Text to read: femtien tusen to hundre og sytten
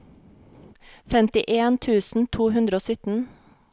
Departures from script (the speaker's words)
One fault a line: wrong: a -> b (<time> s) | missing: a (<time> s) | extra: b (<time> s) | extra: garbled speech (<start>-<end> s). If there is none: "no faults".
no faults